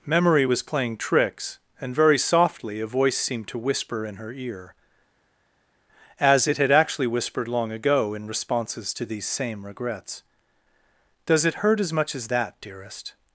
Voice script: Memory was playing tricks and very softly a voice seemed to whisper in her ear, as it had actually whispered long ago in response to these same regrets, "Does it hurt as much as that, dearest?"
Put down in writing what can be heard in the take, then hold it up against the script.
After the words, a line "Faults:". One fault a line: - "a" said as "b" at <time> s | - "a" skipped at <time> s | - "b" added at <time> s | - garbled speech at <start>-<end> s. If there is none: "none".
Memory was playing tricks and very softly a voice seemed to whisper in her ear, as it had actually whispered long ago in responses to these same regrets, "Does it hurt as much as that, dearest?"
Faults:
- "response" said as "responses" at 8.3 s